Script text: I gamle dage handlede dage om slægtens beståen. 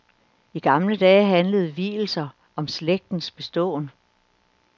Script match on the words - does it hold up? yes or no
no